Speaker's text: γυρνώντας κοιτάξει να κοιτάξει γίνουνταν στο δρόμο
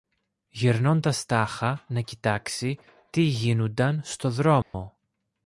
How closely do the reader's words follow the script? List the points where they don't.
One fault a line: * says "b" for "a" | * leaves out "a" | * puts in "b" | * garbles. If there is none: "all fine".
* says "τάχα" for "κοιτάξει"
* puts in "τι"